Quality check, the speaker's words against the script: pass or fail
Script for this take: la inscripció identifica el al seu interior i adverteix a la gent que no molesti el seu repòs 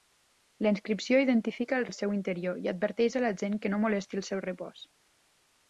pass